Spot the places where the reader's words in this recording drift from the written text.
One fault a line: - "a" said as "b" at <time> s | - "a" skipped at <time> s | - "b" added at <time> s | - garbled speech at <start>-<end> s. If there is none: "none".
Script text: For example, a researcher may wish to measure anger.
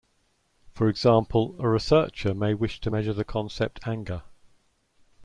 - "the concept" added at 3.1 s